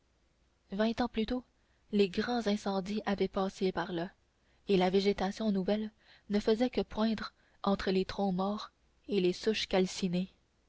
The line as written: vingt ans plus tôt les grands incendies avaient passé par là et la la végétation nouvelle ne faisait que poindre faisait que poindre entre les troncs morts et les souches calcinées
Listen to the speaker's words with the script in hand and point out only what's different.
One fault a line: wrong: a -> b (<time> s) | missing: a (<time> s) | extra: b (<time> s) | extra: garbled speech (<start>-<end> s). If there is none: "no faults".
missing: la (4.9 s)
missing: faisait que poindre (7.3 s)